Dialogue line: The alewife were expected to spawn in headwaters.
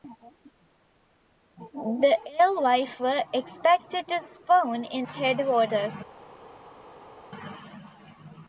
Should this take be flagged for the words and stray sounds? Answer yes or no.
no